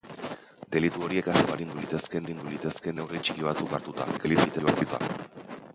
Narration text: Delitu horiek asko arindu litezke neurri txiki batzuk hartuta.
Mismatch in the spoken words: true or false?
true